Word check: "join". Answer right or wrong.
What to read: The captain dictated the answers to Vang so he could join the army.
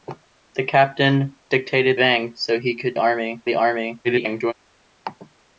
wrong